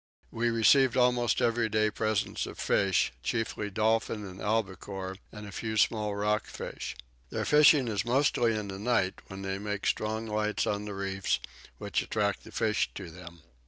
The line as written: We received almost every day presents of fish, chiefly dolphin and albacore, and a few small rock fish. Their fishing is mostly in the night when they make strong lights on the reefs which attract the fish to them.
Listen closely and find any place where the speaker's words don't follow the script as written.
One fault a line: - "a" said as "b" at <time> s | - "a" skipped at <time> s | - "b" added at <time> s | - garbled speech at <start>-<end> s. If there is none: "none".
none